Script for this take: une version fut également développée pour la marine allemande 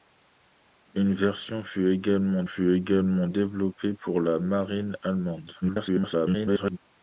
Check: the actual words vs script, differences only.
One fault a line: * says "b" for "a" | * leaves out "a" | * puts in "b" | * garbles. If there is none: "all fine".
* puts in "fut également"
* garbles